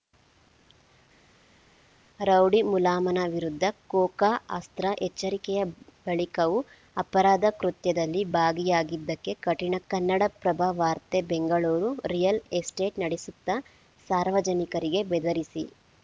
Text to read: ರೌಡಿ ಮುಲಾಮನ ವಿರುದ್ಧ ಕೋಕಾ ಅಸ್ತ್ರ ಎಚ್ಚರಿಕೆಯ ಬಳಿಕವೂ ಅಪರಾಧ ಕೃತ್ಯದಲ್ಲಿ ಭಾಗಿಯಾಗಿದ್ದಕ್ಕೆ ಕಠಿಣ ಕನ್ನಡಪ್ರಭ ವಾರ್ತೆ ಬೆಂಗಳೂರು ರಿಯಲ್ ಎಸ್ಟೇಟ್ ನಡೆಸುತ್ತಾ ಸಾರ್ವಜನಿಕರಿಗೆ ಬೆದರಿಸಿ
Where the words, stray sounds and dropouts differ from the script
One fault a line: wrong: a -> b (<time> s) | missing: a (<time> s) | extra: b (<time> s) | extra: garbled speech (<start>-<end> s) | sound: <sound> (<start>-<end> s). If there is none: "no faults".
no faults